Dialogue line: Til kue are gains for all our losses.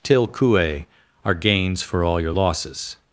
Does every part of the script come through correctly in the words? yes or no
no